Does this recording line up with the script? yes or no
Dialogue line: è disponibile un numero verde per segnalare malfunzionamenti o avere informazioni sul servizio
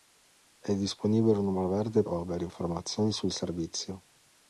no